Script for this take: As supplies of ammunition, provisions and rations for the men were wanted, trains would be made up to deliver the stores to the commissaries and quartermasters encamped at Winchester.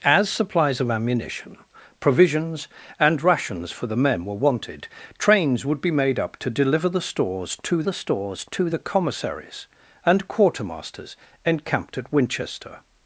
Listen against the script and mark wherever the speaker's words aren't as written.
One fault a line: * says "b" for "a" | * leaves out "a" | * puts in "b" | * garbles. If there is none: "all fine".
* puts in "stores to the"